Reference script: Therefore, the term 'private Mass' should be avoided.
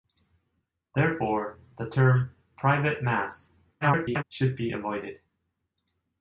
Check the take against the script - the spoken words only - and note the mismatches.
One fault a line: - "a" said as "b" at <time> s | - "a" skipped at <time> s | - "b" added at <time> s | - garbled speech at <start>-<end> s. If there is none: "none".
- garbled speech at 3.8-4.2 s